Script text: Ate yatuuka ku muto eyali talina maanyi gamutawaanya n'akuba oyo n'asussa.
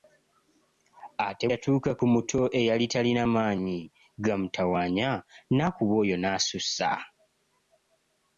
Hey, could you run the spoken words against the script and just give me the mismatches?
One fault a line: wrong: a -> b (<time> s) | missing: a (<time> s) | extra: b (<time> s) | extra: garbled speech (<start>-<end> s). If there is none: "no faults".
no faults